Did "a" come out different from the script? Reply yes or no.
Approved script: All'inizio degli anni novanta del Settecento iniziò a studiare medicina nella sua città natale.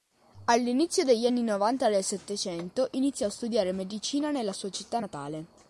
no